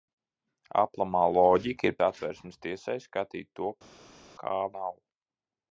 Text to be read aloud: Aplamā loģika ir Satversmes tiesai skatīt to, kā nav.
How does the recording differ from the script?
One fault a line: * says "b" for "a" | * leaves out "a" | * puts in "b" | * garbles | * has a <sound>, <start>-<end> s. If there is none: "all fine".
all fine